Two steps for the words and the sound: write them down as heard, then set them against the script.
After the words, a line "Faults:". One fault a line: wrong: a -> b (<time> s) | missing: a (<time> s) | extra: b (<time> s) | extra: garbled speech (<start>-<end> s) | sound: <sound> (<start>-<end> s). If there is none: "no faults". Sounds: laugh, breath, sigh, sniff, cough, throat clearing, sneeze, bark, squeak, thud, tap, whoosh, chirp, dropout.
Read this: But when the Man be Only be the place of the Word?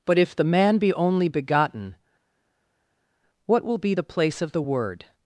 But if the Man be Only begotten, what will be the place of the Word?
Faults:
wrong: when -> if (0.2 s)
extra: begotten what will (1.3 s)